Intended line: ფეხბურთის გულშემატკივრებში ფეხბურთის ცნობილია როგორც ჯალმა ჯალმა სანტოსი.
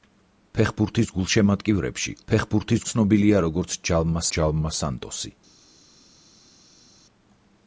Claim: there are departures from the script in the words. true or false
false